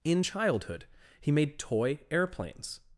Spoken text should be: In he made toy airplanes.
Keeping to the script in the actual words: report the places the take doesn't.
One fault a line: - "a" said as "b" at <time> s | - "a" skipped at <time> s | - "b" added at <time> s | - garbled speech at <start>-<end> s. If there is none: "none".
- "childhood" added at 0.2 s